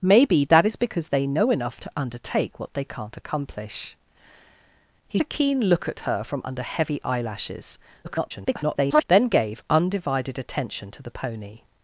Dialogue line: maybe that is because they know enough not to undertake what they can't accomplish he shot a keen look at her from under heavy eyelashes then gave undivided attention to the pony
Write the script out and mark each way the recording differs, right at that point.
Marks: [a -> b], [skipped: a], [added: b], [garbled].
maybe that is because they know enough [skipped: not] to undertake what they can't accomplish he [skipped: shot] a keen look at her from under heavy eyelashes [garbled] then gave undivided attention to the pony